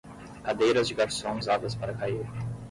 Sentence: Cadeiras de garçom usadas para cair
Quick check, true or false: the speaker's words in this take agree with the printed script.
true